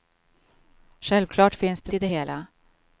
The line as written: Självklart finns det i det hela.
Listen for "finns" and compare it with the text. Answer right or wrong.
right